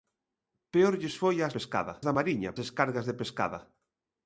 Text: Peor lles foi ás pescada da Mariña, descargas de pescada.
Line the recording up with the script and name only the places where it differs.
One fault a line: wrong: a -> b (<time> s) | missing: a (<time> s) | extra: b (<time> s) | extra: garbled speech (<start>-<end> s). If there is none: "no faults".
no faults